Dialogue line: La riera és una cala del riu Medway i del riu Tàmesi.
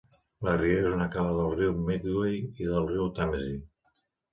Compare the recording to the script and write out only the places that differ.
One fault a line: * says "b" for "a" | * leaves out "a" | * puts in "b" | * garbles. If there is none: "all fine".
all fine